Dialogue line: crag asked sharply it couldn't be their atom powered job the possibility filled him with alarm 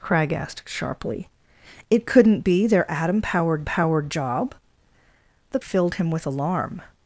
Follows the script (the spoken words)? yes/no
no